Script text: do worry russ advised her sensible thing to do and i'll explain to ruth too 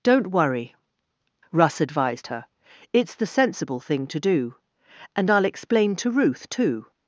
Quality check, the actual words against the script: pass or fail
fail